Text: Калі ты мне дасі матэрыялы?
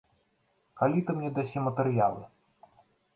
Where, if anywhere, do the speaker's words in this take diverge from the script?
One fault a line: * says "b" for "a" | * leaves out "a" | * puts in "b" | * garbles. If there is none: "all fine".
all fine